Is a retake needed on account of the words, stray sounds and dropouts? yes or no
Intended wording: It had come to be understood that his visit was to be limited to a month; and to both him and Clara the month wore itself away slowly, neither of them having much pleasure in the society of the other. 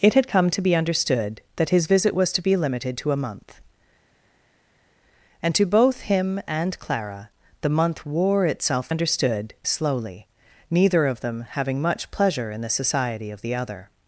yes